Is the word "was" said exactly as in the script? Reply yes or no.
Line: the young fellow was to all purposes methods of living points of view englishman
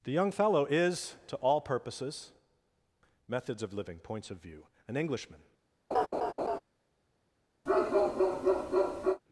no